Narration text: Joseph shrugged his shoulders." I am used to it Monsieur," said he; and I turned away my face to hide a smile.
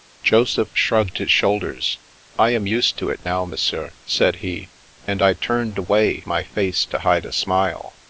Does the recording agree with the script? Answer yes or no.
no